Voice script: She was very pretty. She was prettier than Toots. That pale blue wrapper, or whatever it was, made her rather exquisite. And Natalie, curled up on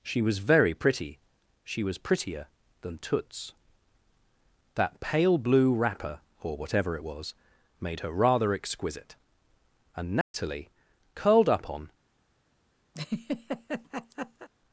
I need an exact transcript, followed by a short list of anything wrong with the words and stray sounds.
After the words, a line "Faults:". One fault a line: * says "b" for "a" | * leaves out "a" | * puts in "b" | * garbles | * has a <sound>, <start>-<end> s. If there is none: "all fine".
She was very pretty. She was prettier than Toots. That pale blue wrapper, or whatever it was, made her rather exquisite. And Natalie, curled up on
Faults:
* has a dropout, 10.2-10.3 s
* has a laugh, 12.9-14.5 s